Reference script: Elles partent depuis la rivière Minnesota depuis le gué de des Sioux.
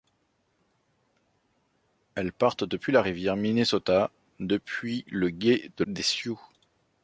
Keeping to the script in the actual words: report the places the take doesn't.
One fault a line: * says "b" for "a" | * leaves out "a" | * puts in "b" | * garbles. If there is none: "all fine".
all fine